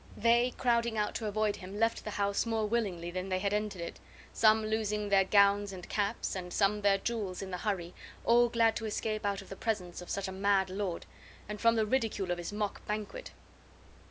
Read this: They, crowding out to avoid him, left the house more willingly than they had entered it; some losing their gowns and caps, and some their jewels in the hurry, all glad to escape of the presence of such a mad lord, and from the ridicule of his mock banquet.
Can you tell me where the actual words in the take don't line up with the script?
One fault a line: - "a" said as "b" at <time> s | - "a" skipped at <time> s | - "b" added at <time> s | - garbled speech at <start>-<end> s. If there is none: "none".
- "out" added at 9.3 s